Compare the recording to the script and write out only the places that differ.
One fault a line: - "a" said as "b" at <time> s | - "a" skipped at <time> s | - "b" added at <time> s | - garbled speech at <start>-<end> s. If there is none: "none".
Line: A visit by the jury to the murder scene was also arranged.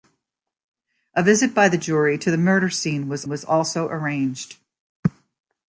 - "was" added at 3.3 s